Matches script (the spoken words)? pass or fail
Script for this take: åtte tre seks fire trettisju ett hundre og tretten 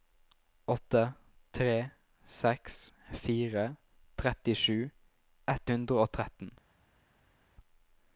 pass